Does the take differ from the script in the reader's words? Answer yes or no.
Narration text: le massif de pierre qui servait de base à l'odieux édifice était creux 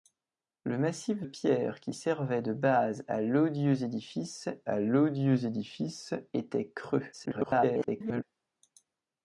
yes